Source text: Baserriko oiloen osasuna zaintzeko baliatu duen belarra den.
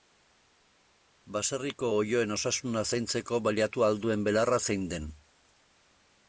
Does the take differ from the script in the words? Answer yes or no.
yes